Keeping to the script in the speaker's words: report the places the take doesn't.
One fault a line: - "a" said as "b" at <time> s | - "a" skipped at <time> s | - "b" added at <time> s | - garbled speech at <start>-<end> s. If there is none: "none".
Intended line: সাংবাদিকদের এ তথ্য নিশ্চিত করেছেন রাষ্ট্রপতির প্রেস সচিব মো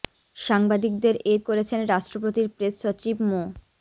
- "তথ্য নিশ্চিত" skipped at 1.4 s